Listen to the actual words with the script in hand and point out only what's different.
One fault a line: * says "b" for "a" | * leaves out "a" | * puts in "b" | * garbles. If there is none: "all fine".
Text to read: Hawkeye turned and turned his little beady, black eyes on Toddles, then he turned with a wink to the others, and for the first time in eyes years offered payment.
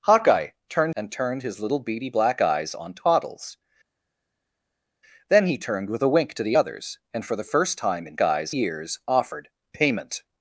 all fine